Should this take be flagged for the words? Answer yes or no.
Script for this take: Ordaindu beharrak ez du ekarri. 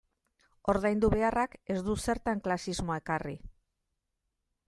yes